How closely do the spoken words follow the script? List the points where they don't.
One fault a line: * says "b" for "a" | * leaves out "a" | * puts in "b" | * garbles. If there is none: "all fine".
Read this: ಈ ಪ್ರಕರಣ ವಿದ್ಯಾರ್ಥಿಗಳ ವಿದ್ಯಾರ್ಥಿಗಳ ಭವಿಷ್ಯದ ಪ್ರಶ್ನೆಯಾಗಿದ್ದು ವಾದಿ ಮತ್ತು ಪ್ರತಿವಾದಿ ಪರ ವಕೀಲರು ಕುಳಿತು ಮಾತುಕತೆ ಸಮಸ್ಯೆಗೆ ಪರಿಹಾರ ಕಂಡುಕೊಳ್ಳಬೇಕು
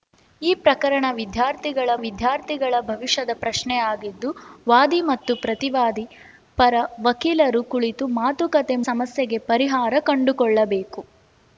all fine